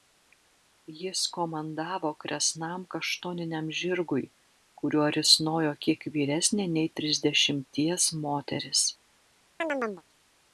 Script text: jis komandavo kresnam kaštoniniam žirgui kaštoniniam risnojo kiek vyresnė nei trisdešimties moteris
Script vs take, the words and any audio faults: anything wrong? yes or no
yes